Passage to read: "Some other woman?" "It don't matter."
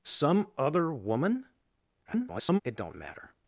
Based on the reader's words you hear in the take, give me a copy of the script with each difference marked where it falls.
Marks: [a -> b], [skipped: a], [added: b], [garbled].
"Some other woman?" [garbled] "It don't matter."